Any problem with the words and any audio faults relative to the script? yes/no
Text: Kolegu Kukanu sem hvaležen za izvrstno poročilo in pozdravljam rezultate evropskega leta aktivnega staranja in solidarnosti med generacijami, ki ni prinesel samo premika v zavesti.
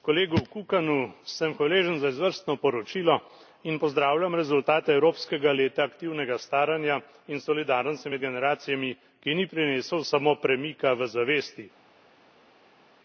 no